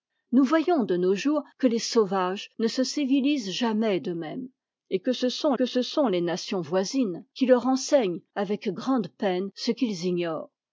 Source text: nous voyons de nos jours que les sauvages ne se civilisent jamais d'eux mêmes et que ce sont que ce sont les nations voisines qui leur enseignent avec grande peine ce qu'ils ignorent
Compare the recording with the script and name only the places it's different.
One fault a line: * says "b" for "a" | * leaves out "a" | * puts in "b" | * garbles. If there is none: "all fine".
all fine